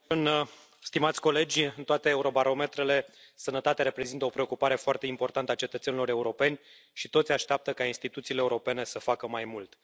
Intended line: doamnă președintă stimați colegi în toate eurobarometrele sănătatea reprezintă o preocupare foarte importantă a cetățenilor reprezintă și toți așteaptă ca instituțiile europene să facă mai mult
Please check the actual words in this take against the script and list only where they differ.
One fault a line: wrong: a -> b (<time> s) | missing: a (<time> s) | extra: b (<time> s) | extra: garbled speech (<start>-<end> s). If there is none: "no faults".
wrong: reprezintă -> europeni (6.1 s)